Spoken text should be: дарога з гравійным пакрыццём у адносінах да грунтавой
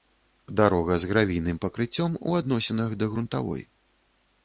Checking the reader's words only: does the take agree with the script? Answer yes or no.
yes